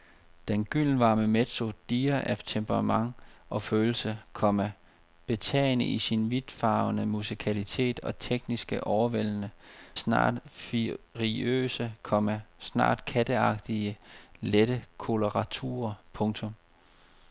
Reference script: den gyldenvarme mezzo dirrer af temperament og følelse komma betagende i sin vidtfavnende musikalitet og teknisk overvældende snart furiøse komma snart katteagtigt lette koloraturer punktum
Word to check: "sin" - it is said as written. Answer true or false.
true